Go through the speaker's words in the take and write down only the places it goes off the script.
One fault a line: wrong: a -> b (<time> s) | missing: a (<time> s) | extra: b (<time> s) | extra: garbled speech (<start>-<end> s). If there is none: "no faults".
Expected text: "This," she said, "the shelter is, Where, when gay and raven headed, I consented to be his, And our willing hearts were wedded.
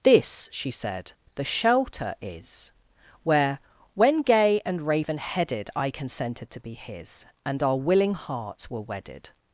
no faults